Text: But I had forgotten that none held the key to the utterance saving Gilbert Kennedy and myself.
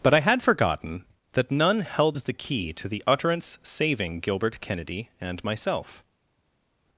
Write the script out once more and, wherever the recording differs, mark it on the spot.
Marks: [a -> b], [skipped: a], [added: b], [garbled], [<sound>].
But I had forgotten that none held the key to the utterance saving Gilbert Kennedy and myself.